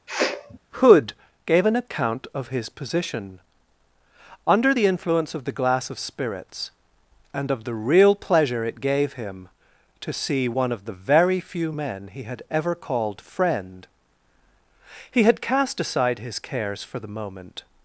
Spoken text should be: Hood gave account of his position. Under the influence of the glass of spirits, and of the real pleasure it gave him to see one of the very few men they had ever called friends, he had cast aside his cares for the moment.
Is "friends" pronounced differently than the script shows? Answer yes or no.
yes